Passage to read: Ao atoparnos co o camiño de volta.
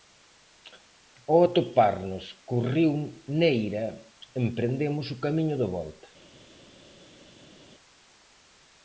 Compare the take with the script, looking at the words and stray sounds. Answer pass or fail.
fail